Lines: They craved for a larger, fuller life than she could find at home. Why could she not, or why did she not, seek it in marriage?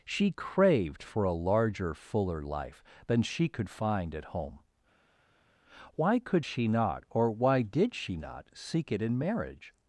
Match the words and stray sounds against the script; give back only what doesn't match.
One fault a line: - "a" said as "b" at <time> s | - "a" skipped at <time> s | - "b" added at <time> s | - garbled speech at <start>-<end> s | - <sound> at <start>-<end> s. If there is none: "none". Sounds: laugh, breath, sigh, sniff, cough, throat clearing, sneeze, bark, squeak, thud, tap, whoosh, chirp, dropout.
- "They" said as "She" at 0.0 s